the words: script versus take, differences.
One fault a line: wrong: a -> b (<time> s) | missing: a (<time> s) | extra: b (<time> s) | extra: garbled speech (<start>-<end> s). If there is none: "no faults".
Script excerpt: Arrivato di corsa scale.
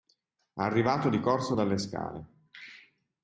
extra: dalle (1.5 s)